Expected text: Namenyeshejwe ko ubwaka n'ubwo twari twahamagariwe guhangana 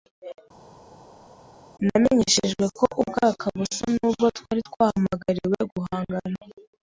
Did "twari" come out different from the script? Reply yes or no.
no